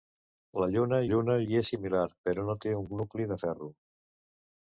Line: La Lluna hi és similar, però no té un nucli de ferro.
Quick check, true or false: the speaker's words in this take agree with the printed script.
false